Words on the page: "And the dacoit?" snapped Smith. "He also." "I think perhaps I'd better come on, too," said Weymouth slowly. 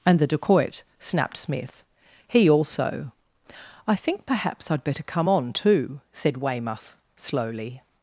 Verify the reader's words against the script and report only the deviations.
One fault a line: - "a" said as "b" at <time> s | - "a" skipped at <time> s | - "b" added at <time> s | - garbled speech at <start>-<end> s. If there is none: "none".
none